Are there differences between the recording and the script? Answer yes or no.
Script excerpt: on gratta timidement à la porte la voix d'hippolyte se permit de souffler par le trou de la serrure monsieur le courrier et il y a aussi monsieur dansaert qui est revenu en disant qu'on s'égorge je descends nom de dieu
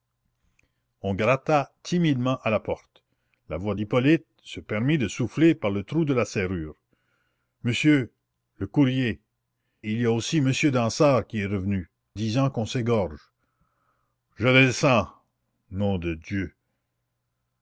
yes